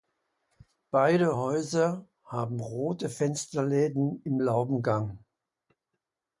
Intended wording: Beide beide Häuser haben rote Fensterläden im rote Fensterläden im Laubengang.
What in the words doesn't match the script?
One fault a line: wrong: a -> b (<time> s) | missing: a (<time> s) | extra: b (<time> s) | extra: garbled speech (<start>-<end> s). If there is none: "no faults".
missing: beide (1.4 s)
missing: rote Fensterläden im (4.4 s)